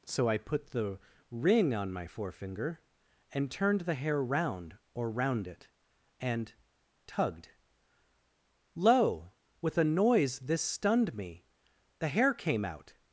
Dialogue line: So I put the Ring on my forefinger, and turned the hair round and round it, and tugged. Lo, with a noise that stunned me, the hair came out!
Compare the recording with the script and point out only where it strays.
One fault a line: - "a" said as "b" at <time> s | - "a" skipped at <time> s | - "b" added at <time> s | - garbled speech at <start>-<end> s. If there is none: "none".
- "and" said as "or" at 4.9 s
- "that" said as "this" at 10.4 s